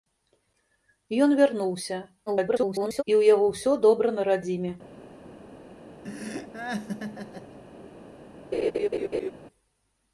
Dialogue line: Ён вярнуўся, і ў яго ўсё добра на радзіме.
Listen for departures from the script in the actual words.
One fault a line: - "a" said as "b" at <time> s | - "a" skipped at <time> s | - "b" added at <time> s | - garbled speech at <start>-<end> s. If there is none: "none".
- garbled speech at 2.3-3.0 s